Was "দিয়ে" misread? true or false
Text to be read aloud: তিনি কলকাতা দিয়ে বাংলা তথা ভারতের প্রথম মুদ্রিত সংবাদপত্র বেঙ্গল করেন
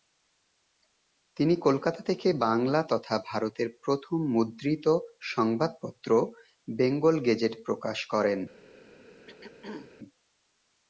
true